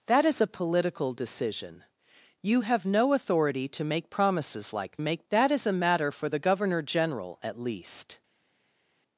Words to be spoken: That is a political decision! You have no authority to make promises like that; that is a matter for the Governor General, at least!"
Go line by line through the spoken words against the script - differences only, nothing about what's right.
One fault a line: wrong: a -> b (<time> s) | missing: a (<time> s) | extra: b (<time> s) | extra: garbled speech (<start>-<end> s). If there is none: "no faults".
wrong: that -> make (5.0 s)